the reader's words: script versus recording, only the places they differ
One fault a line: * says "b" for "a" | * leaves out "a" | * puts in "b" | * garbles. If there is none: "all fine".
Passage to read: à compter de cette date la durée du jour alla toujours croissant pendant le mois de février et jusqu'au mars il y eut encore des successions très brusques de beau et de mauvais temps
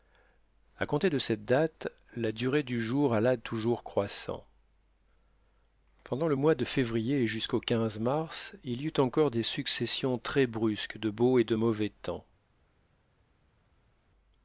all fine